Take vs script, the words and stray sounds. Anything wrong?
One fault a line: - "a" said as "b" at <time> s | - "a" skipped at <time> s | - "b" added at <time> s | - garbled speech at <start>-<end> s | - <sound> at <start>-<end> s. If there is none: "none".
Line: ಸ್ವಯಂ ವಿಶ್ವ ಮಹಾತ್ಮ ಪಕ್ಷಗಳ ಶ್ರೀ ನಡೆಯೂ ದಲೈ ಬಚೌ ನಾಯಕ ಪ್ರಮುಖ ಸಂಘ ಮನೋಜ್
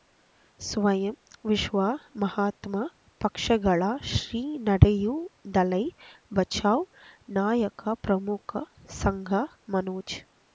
none